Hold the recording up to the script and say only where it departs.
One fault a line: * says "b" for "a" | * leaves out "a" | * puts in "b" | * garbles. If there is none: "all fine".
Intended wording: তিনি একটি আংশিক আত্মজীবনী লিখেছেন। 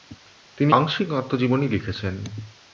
* leaves out "একটি"